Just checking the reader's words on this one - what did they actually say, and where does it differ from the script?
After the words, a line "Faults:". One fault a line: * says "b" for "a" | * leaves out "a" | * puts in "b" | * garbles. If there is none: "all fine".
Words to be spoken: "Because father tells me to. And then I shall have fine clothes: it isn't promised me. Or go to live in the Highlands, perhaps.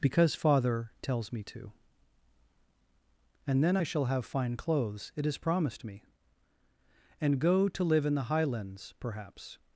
"Because father tells me to. And then I shall have fine clothes: it is promised me. And go to live in the Highlands, perhaps.
Faults:
* says "is" for "isn't"
* says "And" for "Or"